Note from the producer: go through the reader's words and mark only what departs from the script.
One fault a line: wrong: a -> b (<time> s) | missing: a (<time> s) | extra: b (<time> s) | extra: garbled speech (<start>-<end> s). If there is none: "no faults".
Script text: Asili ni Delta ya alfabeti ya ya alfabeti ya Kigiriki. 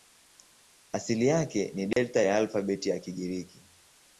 extra: yake (1.3 s)
missing: ya alfabeti ya (3.0 s)